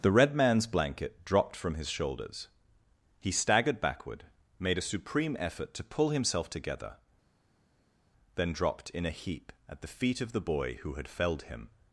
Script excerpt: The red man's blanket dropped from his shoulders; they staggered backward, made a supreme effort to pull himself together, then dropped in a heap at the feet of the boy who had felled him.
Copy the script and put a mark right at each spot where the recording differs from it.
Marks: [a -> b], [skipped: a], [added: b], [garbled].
The red man's blanket dropped from his shoulders; [they -> he] staggered backward, made a supreme effort to pull himself together, then dropped in a heap at the feet of the boy who had felled him.